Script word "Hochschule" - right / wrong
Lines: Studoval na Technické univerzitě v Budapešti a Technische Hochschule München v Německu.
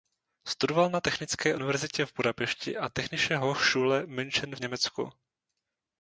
right